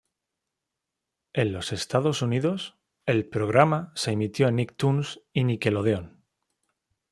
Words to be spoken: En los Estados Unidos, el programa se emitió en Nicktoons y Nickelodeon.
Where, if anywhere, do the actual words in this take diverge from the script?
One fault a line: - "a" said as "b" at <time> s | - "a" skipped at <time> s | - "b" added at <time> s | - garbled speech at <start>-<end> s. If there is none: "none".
none